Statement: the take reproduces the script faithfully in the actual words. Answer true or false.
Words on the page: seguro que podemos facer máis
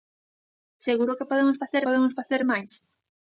false